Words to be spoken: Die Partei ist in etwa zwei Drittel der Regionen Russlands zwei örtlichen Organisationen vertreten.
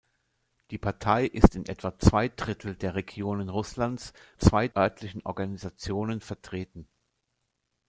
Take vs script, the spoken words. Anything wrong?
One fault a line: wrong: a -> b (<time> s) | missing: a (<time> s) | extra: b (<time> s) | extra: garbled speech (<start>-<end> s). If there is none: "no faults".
no faults